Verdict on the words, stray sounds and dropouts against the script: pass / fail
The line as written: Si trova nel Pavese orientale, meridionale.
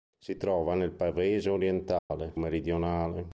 fail